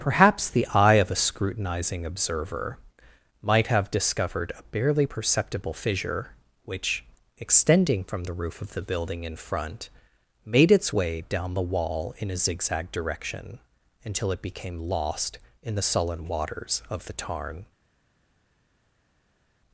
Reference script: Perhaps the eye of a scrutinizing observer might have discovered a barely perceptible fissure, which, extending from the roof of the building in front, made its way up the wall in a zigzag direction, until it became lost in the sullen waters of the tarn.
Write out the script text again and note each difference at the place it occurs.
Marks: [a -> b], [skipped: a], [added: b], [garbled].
Perhaps the eye of a scrutinizing observer might have discovered a barely perceptible fissure, which, extending from the roof of the building in front, made its way [up -> down] the wall in a zigzag direction, until it became lost in the sullen waters of the tarn.